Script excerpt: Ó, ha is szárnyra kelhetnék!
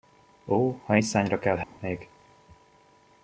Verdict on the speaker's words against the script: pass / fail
pass